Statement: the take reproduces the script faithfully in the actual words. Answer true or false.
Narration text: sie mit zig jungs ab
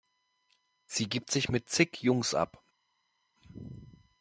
false